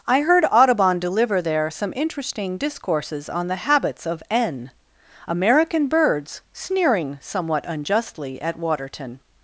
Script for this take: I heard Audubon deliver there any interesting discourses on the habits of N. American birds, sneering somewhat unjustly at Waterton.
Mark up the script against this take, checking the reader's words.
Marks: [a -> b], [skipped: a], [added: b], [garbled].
I heard Audubon deliver there [any -> some] interesting discourses on the habits of N. American birds, sneering somewhat unjustly at Waterton.